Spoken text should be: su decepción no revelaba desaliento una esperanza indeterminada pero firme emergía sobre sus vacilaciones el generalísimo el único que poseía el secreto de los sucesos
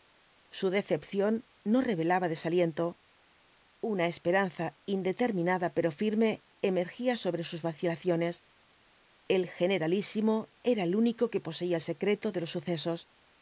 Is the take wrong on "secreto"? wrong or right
right